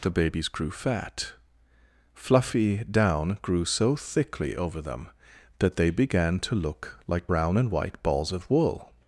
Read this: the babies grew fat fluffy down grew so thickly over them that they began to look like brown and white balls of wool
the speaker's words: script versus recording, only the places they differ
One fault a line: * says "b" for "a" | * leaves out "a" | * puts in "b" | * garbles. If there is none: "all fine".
all fine